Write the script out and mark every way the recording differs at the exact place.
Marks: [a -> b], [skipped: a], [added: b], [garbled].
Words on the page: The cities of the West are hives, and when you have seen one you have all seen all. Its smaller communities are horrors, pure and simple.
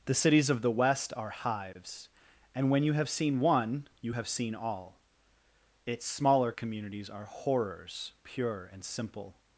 The cities of the West are hives, and when you have seen one you have [skipped: all] seen all. Its smaller communities are horrors, pure and simple.